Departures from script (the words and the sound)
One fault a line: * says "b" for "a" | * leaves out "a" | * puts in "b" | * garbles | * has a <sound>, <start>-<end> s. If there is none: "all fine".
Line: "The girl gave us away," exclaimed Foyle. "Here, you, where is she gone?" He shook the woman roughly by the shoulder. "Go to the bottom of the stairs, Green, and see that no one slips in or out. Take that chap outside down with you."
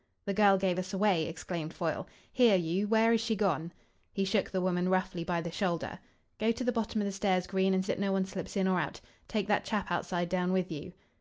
* leaves out "see"